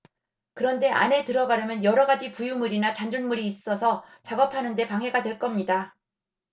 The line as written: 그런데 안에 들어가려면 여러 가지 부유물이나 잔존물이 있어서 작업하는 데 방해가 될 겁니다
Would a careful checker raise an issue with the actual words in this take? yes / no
no